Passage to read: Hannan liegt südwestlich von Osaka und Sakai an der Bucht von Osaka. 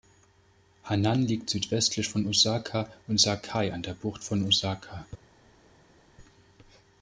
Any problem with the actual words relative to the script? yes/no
no